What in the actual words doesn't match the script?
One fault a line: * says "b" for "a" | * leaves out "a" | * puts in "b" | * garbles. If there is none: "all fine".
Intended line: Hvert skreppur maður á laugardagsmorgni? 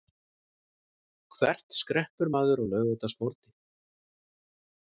all fine